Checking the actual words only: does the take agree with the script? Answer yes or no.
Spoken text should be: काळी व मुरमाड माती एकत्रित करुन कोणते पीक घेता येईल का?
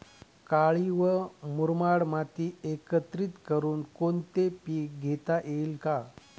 yes